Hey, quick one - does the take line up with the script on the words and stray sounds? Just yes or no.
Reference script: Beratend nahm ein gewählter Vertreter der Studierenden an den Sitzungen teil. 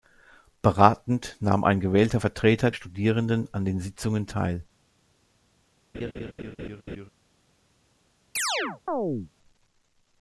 no